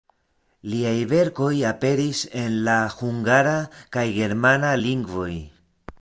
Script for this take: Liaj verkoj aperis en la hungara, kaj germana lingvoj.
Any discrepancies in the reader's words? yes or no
no